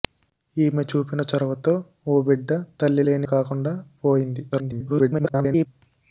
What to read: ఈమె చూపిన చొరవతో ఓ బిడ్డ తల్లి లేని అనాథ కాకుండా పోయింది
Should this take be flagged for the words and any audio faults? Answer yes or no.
yes